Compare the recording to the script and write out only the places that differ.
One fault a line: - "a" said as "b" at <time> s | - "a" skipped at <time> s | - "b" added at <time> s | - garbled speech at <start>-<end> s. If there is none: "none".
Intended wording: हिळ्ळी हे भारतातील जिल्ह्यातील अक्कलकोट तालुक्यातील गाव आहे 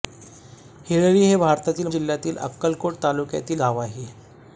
none